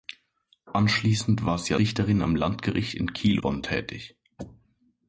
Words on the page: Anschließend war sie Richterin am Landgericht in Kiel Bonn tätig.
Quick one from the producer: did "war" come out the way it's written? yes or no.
yes